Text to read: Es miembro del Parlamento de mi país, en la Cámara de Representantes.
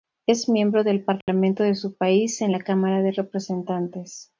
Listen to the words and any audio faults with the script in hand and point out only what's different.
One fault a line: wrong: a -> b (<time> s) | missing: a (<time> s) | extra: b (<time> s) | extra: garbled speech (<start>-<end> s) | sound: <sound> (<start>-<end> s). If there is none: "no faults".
sound: dropout (1.2-1.3 s)
wrong: mi -> su (1.8 s)